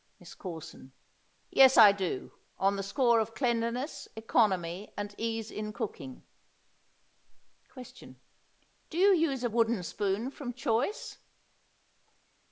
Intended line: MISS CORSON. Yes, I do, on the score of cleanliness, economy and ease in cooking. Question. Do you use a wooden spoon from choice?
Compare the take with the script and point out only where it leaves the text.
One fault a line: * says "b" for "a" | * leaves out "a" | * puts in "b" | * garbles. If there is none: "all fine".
all fine